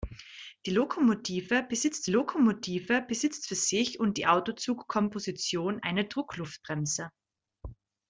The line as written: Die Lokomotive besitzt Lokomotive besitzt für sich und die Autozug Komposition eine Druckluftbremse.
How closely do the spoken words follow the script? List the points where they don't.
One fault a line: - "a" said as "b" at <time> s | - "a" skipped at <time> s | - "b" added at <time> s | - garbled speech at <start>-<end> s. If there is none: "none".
none